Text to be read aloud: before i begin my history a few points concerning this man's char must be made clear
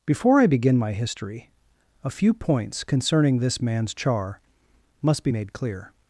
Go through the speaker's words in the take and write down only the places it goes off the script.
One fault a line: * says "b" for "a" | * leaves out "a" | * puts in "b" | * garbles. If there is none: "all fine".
all fine